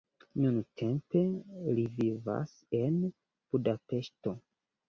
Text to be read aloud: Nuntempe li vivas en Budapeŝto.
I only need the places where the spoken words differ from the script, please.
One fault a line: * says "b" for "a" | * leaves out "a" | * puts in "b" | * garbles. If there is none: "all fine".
all fine